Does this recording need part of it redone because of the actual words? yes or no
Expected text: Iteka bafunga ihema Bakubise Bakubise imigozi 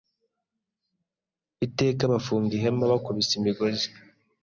yes